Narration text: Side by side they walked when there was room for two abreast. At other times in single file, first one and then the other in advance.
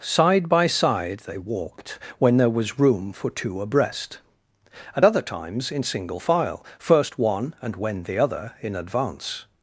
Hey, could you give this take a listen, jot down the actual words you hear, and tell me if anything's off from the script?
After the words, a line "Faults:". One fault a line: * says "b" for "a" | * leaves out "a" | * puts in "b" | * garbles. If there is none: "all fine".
Side by side they walked when there was room for two abreast. At other times in single file, first one and when the other in advance.
Faults:
* says "when" for "then"